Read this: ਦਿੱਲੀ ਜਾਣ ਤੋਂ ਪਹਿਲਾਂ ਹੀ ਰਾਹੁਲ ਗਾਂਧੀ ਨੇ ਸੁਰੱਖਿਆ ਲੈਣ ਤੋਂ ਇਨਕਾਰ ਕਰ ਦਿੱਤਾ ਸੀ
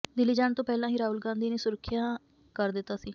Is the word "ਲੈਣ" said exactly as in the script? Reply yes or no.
no